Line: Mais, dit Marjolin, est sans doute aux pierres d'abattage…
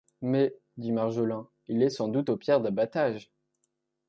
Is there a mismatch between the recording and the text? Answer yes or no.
yes